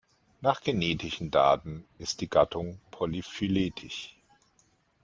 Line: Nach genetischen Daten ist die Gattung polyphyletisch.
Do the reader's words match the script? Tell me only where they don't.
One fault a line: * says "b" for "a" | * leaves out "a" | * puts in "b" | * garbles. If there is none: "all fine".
all fine